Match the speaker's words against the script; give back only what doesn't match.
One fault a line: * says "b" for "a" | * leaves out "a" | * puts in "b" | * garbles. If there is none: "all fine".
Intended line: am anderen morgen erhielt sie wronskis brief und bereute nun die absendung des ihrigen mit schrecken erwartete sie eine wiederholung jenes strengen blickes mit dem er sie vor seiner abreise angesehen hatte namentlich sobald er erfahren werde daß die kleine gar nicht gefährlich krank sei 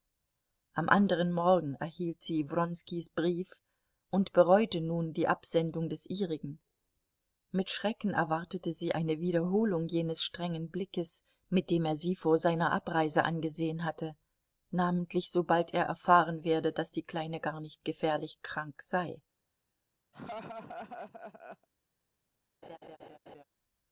all fine